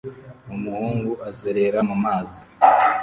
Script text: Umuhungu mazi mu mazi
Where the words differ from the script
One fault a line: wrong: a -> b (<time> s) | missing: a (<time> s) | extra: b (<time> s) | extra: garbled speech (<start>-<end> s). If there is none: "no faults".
wrong: mazi -> azerera (1.3 s)